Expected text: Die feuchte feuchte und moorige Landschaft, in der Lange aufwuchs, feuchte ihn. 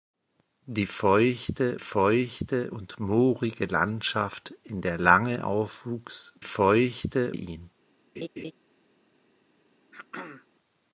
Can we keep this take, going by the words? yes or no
yes